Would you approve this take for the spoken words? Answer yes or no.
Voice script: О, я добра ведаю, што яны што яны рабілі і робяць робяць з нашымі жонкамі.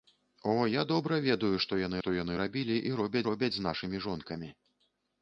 yes